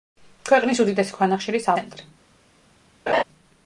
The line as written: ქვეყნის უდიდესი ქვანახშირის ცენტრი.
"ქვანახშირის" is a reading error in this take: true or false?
false